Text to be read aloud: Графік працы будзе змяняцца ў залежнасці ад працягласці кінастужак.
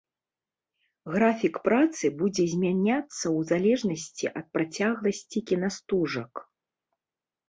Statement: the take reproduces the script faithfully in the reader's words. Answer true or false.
true